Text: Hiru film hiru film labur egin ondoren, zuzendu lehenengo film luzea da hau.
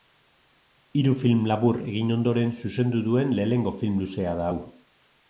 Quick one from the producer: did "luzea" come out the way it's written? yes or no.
yes